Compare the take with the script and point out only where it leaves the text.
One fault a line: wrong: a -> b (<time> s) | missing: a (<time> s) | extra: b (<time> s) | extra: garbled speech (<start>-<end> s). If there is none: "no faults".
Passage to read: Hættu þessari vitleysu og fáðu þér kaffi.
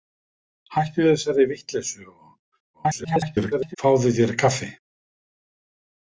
extra: garbled speech (2.7-3.8 s)